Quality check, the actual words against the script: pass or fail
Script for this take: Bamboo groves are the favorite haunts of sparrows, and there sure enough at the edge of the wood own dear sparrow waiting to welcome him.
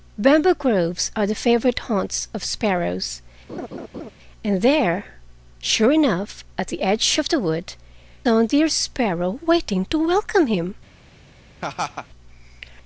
pass